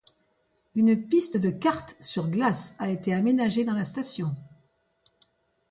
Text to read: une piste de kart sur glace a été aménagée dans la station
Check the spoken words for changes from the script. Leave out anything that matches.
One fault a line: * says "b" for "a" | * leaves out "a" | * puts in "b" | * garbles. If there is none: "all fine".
all fine